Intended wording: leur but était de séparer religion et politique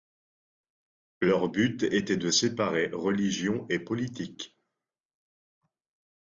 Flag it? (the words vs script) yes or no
no